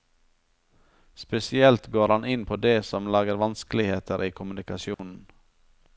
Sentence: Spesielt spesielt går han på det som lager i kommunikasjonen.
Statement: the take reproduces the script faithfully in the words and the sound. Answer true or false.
false